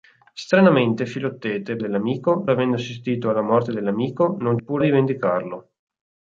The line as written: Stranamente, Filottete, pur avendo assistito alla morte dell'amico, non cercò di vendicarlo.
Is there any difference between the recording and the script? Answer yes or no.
yes